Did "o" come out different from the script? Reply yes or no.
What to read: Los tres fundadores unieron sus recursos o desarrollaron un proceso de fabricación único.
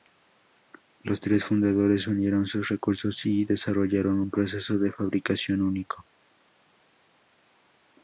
yes